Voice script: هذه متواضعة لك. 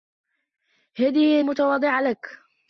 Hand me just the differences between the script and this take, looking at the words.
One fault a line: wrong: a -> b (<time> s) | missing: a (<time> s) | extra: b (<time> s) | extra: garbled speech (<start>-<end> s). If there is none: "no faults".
no faults